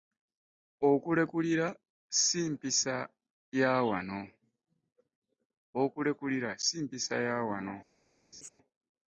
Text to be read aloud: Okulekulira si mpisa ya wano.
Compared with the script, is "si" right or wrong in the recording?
right